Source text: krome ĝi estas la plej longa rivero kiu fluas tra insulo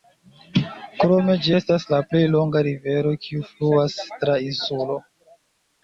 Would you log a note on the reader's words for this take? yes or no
no